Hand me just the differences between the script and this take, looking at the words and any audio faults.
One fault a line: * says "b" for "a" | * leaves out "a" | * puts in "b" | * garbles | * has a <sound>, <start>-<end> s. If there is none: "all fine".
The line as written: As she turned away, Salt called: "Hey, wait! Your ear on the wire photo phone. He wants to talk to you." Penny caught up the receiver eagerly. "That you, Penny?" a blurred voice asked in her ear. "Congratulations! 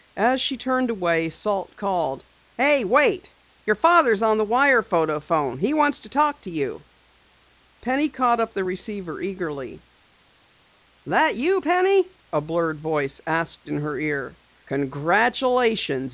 * says "father's" for "ear"